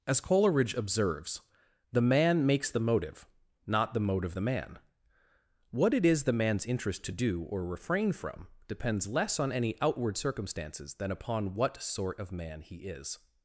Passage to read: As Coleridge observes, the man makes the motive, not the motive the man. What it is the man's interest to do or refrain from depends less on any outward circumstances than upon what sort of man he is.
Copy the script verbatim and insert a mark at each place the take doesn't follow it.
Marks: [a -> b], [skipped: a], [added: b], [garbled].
As Coleridge observes, the man makes the motive, not the motive the man. What it is the man's interest to do or refrain from depends less on any outward circumstances than upon what sort of man he is.